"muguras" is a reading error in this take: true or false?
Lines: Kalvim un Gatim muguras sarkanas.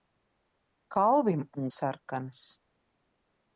true